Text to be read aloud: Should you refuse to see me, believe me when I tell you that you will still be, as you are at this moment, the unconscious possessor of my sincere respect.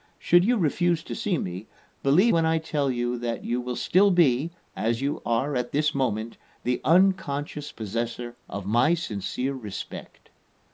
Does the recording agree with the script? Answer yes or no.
no